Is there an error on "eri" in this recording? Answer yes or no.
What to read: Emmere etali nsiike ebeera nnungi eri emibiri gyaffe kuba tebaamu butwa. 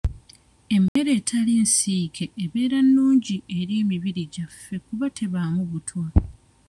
no